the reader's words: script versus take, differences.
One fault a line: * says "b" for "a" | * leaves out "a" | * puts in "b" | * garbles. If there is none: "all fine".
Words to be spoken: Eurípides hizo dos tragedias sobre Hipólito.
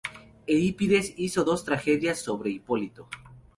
all fine